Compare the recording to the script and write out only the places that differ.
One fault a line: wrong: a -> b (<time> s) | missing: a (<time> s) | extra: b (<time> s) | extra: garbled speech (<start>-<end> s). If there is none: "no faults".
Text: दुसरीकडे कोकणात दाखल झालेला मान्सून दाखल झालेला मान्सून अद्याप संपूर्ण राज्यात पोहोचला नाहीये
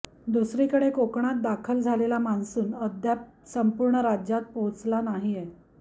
missing: दाखल झालेला मान्सून (2.7 s)